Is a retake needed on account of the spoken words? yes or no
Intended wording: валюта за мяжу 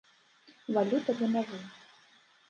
no